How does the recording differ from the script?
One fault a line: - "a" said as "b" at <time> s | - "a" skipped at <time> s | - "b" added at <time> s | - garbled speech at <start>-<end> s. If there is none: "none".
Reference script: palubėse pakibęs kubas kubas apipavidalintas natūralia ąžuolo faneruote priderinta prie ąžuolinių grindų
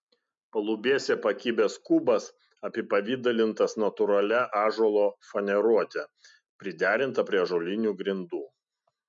- "kubas" skipped at 2.2 s